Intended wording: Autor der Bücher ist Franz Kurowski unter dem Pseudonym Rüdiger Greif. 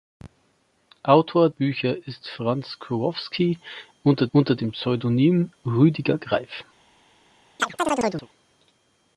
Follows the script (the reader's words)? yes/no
no